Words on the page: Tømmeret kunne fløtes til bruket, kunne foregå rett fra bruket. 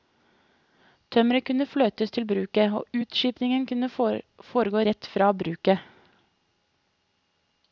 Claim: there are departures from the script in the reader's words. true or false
true